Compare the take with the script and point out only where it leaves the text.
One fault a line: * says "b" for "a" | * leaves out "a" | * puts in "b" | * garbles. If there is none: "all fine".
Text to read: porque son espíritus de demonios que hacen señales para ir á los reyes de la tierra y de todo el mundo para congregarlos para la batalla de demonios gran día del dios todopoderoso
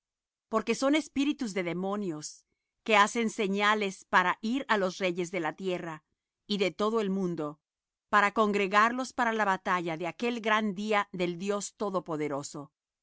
* says "aquel" for "demonios"